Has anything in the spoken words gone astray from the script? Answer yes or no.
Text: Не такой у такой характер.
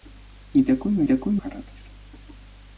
no